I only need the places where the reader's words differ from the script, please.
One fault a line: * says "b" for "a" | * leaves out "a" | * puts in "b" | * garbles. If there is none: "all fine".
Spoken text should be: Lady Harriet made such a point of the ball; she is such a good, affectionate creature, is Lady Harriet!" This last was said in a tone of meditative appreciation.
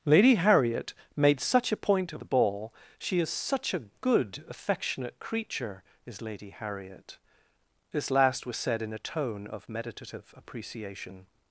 all fine